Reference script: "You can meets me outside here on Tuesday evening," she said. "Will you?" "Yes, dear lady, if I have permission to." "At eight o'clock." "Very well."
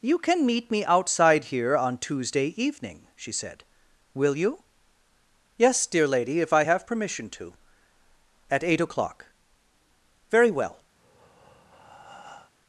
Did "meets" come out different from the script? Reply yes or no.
yes